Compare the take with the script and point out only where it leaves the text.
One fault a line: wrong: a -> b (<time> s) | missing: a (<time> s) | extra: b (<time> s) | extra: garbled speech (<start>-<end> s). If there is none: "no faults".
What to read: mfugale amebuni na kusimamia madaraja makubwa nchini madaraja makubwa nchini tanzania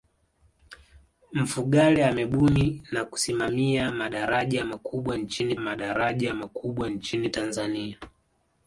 no faults